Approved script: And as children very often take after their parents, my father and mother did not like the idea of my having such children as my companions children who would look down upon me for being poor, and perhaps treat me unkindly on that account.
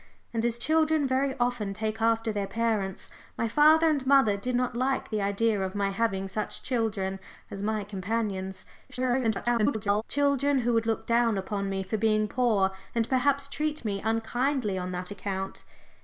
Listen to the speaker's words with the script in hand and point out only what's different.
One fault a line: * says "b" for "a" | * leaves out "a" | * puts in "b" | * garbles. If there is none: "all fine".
* garbles